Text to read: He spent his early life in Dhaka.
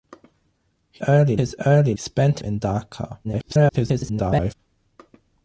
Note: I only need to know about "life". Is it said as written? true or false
false